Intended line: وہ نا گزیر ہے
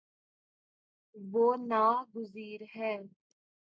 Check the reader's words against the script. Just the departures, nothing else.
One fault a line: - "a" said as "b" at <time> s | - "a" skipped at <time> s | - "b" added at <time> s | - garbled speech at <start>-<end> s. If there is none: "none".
none